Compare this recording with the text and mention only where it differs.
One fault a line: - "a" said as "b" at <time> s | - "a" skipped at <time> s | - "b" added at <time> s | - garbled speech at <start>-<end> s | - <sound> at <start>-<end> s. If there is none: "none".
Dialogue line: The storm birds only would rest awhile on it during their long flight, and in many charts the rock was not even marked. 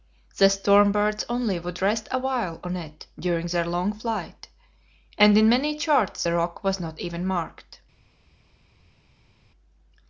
none